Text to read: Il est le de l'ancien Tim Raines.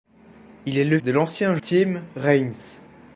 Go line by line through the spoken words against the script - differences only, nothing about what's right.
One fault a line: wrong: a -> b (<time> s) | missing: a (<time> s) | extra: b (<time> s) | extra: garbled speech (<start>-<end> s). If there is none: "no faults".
no faults